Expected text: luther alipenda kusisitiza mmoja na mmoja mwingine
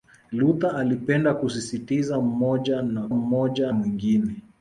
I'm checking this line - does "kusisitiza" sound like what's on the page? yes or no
yes